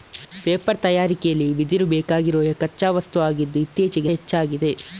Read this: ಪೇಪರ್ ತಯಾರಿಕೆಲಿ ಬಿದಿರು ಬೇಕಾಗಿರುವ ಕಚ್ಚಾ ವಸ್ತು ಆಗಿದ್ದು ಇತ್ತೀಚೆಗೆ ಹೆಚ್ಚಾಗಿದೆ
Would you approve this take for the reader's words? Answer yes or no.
yes